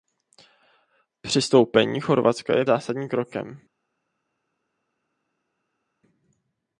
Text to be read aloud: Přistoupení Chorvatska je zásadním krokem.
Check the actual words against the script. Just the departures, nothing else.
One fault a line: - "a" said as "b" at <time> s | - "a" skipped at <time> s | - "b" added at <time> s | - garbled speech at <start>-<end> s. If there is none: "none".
none